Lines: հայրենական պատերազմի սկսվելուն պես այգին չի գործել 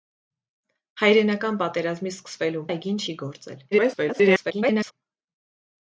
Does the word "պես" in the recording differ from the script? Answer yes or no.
yes